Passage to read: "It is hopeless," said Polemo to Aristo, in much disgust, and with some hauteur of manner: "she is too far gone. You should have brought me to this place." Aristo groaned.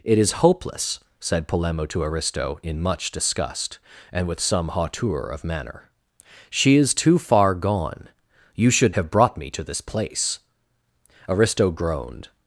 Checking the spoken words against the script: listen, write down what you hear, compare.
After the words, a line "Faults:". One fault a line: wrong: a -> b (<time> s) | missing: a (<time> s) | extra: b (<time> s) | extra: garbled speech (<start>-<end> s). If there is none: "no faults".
"It is hopeless," said Polemo to Aristo, in much disgust, and with some hauteur of manner: "she is too far gone. You should have brought me to this place." Aristo groaned.
Faults:
no faults